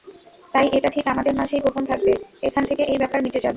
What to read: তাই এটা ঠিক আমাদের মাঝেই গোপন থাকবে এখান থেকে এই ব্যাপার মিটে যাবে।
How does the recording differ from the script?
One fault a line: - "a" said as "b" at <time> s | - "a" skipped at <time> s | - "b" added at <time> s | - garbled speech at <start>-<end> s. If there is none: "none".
none